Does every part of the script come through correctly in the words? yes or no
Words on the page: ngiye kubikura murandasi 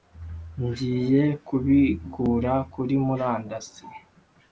no